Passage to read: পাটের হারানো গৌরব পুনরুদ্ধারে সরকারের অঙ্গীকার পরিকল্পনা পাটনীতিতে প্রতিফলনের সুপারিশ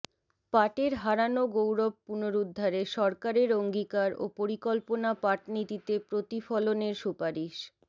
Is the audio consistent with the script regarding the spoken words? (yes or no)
no